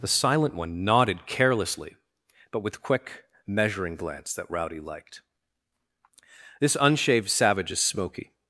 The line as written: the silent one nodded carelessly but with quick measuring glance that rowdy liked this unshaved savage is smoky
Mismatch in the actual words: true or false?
false